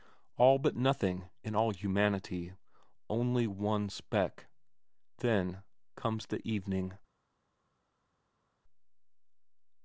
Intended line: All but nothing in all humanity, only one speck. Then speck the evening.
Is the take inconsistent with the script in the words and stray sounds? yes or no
yes